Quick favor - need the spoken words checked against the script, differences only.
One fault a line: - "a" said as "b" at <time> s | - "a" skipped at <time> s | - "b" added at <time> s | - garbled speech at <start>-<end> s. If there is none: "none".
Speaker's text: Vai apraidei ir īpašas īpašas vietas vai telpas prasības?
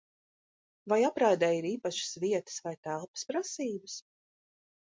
- "īpašas" skipped at 2.2 s